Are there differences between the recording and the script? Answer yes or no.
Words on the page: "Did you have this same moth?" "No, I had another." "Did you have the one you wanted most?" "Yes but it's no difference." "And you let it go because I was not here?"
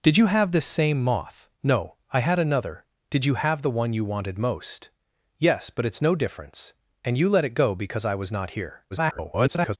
yes